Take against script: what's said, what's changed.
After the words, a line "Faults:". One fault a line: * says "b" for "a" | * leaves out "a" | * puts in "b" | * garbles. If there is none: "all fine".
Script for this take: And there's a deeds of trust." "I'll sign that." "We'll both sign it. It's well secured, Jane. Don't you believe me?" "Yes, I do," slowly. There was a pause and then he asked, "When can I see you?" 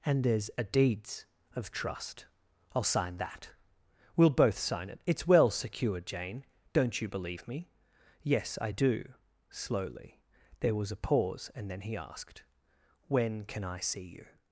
And there's a deeds of trust." "I'll sign that." "We'll both sign it. It's well secured, Jane. Don't you believe me?" "Yes, I do," slowly. There was a pause and then he asked, "When can I see you?"
Faults:
all fine